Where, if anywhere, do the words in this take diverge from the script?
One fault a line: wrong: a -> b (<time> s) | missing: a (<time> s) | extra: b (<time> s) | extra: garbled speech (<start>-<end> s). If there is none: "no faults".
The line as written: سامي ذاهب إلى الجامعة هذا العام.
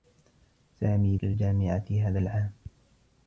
missing: ذاهب (1.2 s)